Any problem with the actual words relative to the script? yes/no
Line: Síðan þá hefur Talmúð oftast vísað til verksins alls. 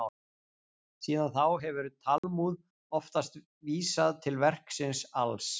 no